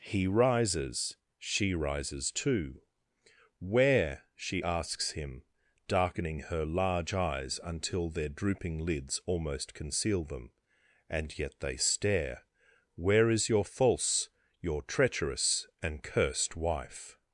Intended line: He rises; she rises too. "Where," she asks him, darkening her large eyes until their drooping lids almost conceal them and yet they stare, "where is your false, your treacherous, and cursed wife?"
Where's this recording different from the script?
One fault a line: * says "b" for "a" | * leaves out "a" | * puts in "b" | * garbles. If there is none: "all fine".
all fine